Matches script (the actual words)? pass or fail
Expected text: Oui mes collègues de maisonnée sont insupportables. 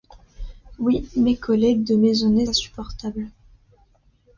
fail